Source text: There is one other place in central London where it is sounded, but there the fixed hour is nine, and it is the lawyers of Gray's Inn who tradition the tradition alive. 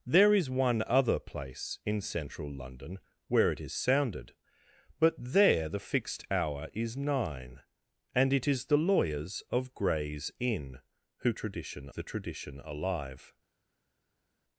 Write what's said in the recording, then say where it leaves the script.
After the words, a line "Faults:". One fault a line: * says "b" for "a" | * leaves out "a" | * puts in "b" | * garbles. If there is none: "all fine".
There is one other place in central London where it is sounded, but there the fixed hour is nine, and it is the lawyers of Gray's Inn who tradition the tradition alive.
Faults:
all fine